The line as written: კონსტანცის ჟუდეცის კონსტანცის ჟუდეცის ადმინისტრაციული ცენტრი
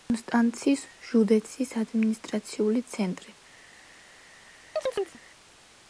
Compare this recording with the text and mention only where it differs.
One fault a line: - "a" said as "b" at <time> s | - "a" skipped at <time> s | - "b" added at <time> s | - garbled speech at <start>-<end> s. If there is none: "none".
- "კონსტანცის ჟუდეცის" skipped at 1.8 s